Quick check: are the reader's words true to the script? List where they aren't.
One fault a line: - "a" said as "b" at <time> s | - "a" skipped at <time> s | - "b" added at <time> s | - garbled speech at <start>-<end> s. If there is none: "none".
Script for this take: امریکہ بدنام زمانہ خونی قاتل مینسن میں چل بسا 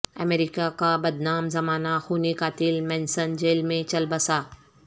- "کا" added at 0.8 s
- "جیل" added at 3.4 s